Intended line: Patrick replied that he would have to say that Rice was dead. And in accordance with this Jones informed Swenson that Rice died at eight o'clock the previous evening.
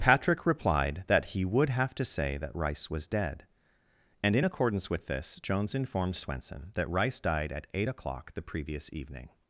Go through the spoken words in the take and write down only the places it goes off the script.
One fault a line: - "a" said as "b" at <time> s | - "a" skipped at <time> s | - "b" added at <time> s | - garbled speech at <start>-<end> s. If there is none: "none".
none